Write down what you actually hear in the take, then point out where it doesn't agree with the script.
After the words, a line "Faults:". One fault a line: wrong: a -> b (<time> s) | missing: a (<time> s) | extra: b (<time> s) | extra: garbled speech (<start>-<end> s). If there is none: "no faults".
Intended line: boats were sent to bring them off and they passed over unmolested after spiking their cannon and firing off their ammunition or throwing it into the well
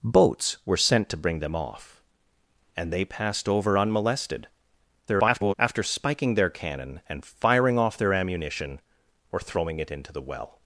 boats were sent to bring them off and they passed over unmolested [garbled] after spiking their cannon and firing off their ammunition or throwing it into the well
Faults:
extra: garbled speech (5.1-5.5 s)